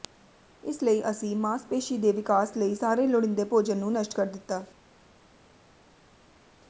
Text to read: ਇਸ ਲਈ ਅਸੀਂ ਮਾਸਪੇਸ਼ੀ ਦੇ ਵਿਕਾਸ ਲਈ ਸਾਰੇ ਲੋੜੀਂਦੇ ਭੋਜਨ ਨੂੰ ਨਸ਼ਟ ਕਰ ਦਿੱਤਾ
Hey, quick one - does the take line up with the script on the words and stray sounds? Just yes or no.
yes